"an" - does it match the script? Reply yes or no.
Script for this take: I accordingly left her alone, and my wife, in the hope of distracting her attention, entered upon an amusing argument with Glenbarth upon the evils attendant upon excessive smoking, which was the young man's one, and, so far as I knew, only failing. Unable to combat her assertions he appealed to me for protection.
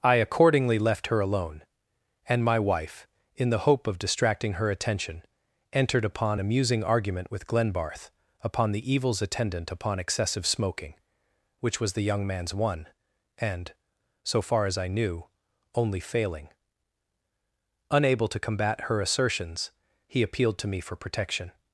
no